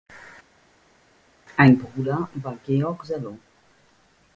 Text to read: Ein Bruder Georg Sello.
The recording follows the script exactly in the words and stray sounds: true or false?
false